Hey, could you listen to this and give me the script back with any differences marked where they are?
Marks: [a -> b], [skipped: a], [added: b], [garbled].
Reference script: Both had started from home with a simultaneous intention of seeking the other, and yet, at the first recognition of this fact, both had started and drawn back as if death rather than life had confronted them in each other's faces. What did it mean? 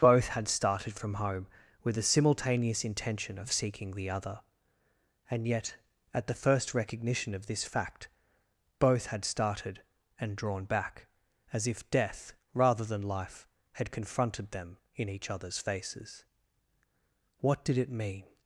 Both had started from home with a simultaneous intention of seeking the other, and yet, at the first recognition of this fact, both had started and drawn back as if death rather than life had confronted them in each other's faces. What did it mean?